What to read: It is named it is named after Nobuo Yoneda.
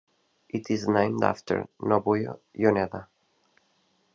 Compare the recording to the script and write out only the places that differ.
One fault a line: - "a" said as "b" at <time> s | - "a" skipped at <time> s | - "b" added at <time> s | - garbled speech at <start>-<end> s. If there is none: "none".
- "it is named" skipped at 1.2 s